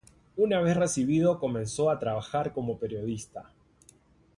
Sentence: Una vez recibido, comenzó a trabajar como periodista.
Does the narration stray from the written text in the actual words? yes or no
no